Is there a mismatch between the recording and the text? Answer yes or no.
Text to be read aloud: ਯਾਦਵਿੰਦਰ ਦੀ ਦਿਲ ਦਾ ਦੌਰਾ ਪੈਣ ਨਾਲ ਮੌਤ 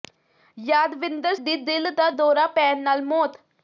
no